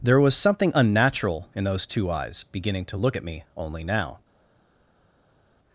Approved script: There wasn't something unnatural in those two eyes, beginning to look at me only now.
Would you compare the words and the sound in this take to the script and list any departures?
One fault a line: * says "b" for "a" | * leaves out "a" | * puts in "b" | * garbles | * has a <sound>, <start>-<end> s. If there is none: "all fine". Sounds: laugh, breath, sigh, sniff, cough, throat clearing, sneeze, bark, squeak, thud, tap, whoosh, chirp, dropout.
* says "was" for "wasn't"